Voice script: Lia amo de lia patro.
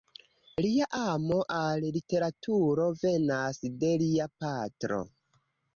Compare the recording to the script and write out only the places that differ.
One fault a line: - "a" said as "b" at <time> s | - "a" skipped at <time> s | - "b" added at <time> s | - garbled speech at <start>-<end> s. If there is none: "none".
- "al literaturo venas" added at 1.6 s